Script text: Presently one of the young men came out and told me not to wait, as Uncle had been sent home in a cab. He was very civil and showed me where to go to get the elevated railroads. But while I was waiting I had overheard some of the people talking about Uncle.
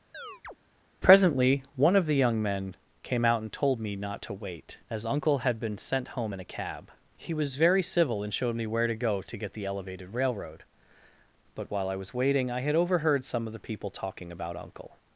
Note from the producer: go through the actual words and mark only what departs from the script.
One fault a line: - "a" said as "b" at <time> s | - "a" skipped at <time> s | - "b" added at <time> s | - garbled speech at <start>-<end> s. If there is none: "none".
- "railroads" said as "railroad" at 10.1 s